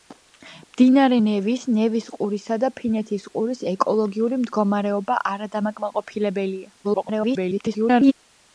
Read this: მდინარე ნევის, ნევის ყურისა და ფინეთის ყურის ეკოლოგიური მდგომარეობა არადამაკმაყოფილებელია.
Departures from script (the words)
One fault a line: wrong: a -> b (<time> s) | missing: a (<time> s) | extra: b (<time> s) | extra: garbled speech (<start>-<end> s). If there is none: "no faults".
extra: garbled speech (6.8-8.1 s)